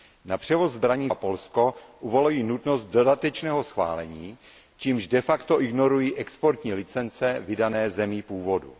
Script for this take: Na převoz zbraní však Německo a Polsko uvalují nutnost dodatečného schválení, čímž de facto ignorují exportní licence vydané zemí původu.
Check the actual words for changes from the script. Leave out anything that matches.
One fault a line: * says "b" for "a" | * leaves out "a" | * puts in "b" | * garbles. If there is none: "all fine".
* leaves out "však Německo"